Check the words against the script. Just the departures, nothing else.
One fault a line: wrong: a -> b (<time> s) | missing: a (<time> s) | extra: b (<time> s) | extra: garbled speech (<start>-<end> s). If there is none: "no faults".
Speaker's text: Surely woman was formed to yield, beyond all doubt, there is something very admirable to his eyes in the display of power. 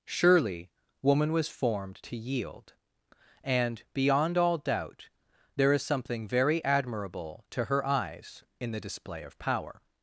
extra: and (3.4 s)
wrong: his -> her (7.6 s)